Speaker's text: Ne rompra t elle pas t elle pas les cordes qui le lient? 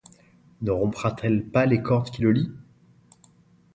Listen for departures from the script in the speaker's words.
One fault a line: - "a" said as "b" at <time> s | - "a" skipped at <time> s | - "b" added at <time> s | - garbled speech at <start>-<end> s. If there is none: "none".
- "t elle pas" skipped at 1.7 s